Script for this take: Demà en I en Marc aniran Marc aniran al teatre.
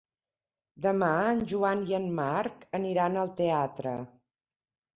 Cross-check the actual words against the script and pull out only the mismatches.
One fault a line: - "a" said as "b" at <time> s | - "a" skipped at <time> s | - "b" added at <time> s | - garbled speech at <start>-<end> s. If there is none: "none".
- "Joan" added at 1.5 s
- "Marc aniran" skipped at 3.2 s